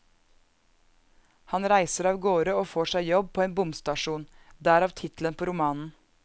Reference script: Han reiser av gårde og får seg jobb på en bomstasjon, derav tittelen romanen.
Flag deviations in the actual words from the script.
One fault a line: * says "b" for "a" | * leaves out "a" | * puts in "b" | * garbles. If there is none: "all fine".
* puts in "på"